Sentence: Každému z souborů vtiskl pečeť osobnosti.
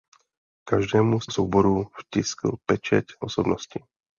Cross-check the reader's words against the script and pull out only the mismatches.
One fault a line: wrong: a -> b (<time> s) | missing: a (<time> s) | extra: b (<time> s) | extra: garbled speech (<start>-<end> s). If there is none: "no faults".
no faults